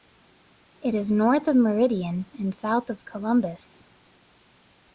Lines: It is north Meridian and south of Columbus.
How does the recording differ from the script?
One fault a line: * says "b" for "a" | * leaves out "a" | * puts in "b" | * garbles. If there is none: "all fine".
* puts in "of"